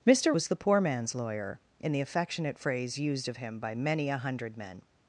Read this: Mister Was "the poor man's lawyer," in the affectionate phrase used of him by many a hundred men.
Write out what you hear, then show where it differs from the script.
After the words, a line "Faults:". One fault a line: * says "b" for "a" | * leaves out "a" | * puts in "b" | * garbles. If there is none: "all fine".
Mister Was "the poor man's lawyer," in the affectionate phrase used of him by many a hundred men.
Faults:
all fine